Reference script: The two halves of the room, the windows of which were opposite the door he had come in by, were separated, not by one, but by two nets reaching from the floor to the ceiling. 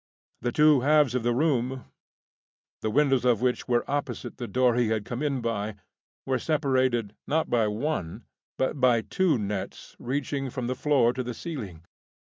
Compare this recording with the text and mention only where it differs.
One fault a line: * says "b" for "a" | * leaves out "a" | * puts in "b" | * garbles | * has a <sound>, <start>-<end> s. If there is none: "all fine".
all fine